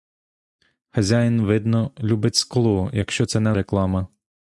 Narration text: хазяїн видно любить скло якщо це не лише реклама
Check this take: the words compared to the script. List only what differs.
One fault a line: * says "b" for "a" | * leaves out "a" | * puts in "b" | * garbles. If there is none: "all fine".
* leaves out "лише"